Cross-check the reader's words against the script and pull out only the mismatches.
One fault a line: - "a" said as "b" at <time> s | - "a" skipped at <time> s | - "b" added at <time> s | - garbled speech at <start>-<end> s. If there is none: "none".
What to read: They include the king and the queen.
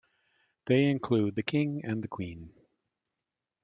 none